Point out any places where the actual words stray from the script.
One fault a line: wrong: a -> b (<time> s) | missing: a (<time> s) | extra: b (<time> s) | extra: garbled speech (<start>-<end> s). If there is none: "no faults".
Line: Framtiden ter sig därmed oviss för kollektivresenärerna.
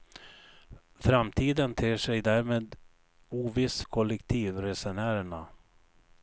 missing: för (3.8 s)